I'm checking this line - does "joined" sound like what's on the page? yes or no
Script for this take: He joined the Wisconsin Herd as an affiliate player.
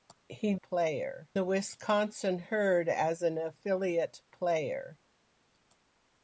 no